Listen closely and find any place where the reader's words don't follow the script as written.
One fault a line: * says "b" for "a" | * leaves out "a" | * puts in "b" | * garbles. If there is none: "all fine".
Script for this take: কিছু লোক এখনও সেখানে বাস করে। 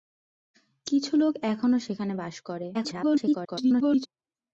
* garbles